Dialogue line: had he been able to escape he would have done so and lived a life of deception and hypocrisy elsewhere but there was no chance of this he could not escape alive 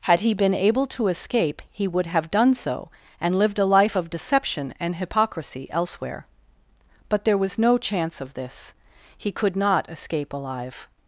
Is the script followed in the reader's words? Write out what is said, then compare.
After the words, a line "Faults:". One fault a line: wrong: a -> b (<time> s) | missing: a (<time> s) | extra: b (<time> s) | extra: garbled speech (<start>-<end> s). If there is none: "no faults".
had he been able to escape he would have done so and lived a life of deception and hypocrisy elsewhere but there was no chance of this he could not escape alive
Faults:
no faults